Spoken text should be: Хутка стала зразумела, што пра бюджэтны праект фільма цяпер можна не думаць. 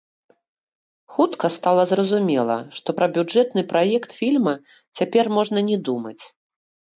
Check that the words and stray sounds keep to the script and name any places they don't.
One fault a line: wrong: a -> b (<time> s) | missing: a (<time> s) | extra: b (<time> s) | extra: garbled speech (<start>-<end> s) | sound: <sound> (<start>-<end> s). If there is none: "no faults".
no faults